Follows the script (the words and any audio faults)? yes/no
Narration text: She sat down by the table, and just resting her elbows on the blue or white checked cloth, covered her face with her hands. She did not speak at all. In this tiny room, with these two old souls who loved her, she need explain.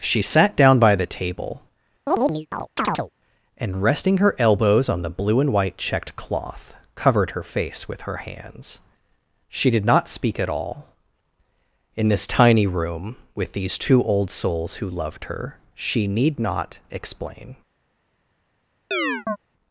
no